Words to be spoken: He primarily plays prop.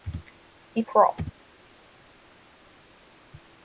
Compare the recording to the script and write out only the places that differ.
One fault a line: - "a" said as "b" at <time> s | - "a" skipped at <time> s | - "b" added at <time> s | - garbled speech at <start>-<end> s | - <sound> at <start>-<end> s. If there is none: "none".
- "primarily plays" skipped at 0.8 s